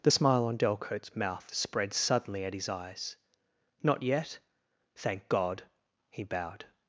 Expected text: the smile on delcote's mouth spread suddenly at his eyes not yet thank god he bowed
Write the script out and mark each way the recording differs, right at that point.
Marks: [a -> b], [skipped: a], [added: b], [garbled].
the smile on delcote's mouth spread suddenly at his eyes not yet thank god he bowed